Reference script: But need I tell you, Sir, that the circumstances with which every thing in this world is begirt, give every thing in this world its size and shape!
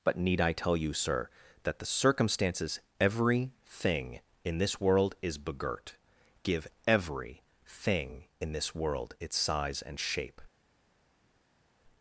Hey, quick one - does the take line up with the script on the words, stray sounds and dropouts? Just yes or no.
no